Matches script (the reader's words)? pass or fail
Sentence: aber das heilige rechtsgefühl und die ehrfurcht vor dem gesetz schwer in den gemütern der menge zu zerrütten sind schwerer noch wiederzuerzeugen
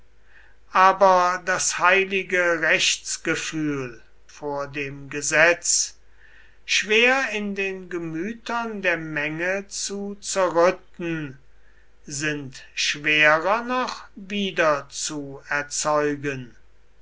fail